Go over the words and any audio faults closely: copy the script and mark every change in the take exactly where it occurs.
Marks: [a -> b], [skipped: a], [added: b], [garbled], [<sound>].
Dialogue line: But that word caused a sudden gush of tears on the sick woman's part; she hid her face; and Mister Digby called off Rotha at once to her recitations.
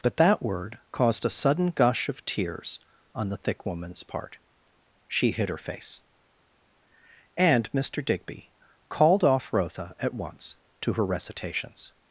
But that word caused a sudden gush of tears on the [sick -> thick] woman's part; she hid her face; and Mister Digby called off Rotha at once to her recitations.